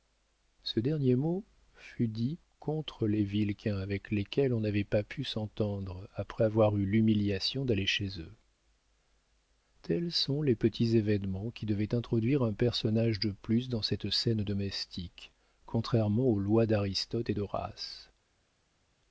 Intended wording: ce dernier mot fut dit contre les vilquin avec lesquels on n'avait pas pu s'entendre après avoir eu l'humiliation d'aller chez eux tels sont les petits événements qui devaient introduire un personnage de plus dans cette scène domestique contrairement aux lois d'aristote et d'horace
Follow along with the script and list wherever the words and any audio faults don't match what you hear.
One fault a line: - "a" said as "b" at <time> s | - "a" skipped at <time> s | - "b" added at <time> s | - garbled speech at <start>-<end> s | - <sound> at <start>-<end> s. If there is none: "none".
none